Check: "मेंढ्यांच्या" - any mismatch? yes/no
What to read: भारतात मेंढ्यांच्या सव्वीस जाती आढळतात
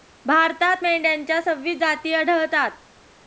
no